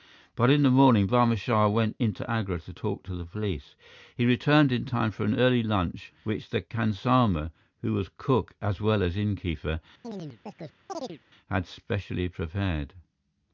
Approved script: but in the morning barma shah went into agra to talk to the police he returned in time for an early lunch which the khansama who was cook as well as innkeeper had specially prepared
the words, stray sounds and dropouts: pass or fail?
fail